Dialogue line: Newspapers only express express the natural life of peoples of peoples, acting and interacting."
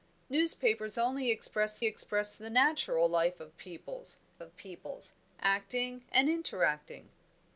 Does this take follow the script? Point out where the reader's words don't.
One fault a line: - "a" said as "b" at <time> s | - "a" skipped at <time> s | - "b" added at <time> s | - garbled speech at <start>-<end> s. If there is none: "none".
none